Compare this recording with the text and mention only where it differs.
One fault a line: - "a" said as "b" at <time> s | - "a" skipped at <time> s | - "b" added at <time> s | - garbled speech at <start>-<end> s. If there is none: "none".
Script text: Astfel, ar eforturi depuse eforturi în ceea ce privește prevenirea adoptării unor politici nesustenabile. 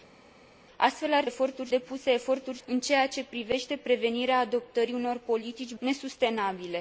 none